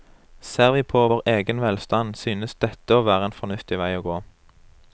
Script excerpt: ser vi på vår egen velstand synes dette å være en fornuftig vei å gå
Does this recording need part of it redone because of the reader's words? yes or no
no